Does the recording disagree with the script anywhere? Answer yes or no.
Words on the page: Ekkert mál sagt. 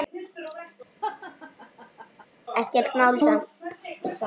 no